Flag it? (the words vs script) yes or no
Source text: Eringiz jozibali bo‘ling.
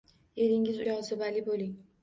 no